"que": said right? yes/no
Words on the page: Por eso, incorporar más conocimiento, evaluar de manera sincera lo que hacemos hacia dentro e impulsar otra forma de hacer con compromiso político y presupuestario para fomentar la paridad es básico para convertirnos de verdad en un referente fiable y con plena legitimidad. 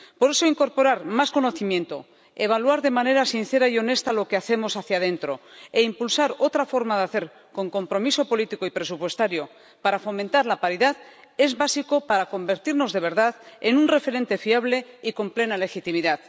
yes